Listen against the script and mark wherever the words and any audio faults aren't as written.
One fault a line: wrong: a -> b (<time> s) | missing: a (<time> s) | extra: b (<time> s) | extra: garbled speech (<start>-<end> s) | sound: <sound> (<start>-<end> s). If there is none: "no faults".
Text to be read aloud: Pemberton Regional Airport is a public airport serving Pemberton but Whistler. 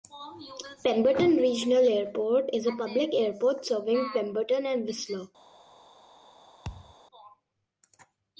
wrong: but -> and (4.7 s)
sound: thud (6.6-7.0 s)